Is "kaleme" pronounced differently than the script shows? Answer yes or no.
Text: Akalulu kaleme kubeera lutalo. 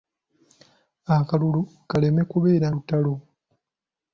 no